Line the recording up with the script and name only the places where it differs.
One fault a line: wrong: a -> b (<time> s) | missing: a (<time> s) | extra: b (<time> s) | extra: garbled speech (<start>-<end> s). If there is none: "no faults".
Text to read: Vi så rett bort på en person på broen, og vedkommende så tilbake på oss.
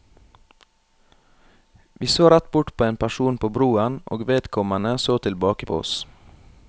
no faults